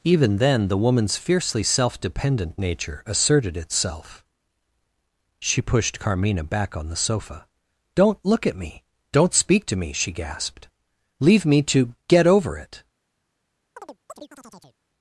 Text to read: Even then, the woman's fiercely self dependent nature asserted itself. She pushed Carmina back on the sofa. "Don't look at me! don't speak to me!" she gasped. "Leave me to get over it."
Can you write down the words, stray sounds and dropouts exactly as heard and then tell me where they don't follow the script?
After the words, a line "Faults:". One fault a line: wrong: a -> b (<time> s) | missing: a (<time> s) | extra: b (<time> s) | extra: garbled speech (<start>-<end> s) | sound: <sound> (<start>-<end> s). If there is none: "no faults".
Even then, the woman's fiercely self dependent nature asserted itself. She pushed Carmina back on the sofa. "Don't look at me! don't speak to me!" she gasped. "Leave me to get over it."
Faults:
sound: chirp (13.8-14.8 s)